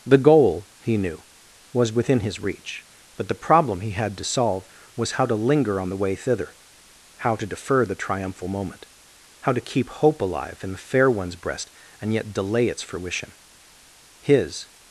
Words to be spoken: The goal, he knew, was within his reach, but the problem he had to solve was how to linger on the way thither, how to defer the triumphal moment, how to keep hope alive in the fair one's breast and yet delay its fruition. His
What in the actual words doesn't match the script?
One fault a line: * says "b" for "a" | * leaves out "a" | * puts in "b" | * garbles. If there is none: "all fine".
all fine